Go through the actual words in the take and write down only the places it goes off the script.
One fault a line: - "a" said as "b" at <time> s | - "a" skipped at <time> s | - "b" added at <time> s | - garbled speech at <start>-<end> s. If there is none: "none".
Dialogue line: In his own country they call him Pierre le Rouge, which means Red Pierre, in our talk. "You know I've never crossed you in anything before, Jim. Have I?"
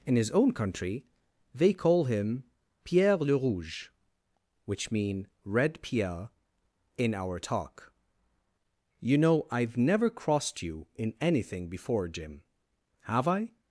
- "means" said as "mean" at 4.9 s